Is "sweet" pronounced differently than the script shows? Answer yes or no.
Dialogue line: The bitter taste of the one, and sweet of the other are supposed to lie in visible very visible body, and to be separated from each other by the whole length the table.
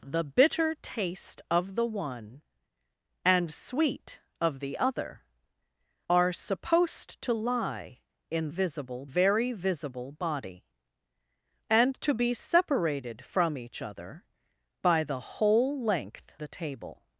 no